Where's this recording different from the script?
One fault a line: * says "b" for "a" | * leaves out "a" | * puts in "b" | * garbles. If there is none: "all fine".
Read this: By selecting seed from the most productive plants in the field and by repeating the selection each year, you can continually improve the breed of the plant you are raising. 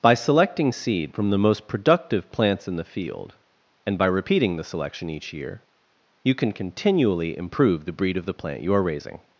all fine